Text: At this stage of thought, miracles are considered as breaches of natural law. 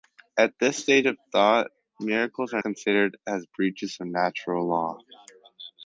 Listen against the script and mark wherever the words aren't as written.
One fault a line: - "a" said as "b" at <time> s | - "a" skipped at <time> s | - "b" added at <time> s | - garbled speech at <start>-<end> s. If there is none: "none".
none